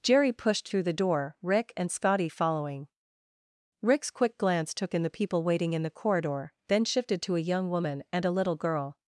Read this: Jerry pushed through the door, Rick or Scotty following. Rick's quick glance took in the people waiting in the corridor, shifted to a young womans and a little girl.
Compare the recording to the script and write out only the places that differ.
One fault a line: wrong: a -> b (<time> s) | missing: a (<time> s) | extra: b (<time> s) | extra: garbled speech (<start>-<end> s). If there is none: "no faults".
wrong: or -> and (1.8 s)
extra: then (6.7 s)
wrong: womans -> woman (7.7 s)